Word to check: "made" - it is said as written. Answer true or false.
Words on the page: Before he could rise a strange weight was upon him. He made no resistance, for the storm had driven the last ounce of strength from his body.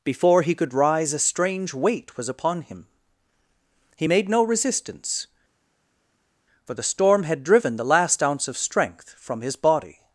true